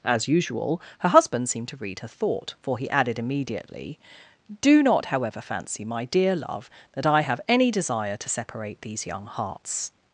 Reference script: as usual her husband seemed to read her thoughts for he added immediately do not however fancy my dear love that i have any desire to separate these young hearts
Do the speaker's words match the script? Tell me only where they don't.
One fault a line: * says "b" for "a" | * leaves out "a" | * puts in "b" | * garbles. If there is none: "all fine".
* says "thought" for "thoughts"